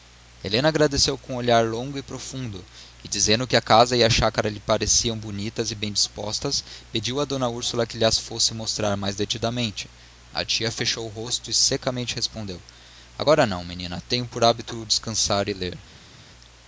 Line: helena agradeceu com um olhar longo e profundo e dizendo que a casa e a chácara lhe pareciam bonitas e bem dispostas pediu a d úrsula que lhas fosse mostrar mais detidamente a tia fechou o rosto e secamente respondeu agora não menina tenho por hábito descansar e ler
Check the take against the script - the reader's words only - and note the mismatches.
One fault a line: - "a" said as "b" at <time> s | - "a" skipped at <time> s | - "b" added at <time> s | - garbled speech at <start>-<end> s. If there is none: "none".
none